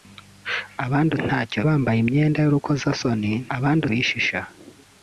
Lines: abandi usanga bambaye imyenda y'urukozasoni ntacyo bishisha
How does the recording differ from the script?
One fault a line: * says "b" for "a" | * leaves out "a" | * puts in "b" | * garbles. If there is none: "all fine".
* says "ntacyo" for "usanga"
* says "abandi" for "ntacyo"